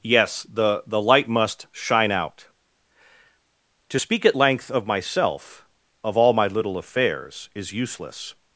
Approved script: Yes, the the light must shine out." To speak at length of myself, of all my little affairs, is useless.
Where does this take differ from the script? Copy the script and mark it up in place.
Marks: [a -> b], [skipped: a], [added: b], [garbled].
Yes, the the light must shine out." To speak at length of myself, of all my little affairs, is useless.